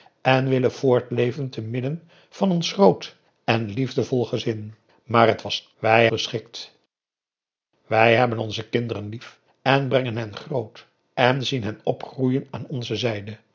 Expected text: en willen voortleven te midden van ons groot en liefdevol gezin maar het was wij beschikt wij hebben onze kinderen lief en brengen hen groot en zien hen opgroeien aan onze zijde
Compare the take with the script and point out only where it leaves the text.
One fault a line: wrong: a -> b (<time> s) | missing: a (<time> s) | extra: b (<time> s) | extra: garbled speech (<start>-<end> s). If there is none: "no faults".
no faults